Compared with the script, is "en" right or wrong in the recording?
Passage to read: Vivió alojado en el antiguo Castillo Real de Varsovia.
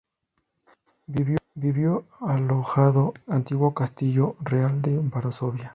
wrong